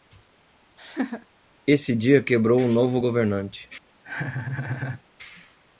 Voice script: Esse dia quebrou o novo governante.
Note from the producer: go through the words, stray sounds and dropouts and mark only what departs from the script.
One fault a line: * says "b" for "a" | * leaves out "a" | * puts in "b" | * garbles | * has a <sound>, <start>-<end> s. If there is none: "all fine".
* has a laugh, 0.8-1.3 s
* has a laugh, 4.0-5.0 s